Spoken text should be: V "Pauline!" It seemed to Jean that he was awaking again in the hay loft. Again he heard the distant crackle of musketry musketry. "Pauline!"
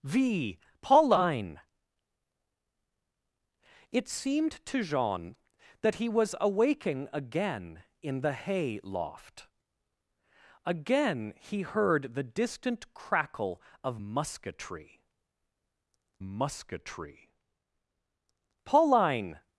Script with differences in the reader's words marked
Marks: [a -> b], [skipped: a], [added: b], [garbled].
V "Pauline!" It seemed to Jean that he was awaking again in the hay loft. Again he heard the distant crackle of musketry musketry. "Pauline!"